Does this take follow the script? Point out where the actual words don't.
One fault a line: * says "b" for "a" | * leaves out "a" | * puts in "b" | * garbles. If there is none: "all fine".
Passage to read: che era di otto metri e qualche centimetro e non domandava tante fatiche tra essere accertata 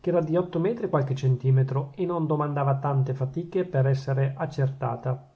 * says "per" for "tra"